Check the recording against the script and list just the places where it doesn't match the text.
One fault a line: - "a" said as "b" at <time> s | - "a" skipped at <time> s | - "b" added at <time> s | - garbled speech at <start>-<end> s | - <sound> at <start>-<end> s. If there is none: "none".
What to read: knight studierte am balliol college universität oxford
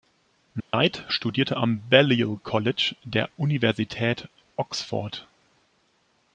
- dropout at 0.6-0.7 s
- "der" added at 3.0 s